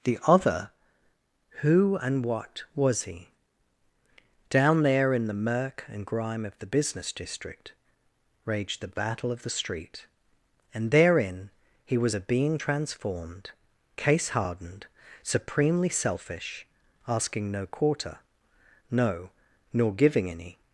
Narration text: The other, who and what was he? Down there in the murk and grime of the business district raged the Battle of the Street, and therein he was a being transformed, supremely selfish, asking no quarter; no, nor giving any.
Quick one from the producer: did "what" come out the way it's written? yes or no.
yes